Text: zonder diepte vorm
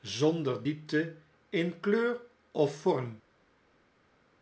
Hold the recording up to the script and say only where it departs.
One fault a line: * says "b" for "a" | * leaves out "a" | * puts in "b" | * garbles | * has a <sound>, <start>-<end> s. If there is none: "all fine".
* puts in "in kleur of"